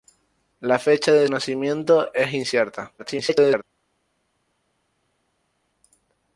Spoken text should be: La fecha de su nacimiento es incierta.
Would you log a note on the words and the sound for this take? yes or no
yes